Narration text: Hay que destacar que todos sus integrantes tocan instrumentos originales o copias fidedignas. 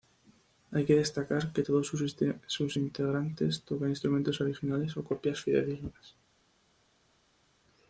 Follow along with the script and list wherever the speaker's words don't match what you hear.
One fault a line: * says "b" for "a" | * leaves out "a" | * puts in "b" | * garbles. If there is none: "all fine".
all fine